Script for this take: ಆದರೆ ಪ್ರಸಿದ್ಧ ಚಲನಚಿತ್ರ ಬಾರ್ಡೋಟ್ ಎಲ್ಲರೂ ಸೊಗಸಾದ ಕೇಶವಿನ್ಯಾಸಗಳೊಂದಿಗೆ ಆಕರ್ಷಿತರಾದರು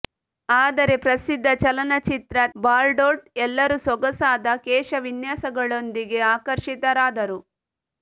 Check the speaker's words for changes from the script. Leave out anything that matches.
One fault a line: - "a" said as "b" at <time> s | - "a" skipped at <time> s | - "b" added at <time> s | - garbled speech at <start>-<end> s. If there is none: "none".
none